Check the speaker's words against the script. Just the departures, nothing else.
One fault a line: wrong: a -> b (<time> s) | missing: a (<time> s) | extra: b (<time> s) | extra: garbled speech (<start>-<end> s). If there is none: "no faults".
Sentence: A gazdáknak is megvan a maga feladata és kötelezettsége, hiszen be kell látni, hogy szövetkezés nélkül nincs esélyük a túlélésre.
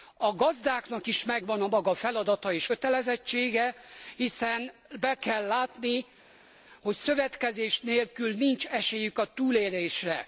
no faults